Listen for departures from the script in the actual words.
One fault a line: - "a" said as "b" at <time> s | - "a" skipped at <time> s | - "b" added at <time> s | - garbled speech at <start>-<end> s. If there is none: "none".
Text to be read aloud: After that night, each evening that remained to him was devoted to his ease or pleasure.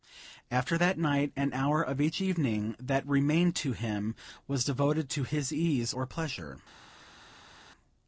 - "an hour of" added at 1.4 s